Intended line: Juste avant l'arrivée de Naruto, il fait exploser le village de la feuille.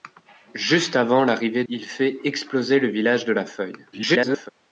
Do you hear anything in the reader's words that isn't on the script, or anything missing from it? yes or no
yes